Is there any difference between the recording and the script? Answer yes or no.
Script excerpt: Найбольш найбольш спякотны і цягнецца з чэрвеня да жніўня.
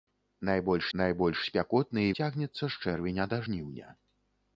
no